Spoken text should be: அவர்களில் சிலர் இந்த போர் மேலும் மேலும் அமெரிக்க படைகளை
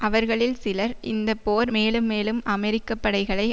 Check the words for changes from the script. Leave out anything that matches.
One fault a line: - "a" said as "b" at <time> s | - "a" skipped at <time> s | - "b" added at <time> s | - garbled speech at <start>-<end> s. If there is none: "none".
none